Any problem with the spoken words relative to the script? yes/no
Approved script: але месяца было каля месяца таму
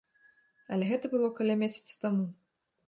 yes